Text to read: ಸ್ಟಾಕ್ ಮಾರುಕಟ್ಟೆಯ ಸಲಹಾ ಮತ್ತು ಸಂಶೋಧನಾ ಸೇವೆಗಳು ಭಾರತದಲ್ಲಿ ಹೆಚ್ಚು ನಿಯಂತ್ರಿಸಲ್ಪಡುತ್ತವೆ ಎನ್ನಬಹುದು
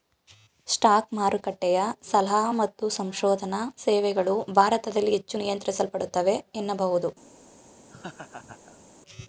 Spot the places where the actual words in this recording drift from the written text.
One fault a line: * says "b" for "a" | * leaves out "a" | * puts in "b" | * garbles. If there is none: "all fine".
all fine